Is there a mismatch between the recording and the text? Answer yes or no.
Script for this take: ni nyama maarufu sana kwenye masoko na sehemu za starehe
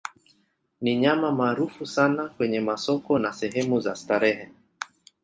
no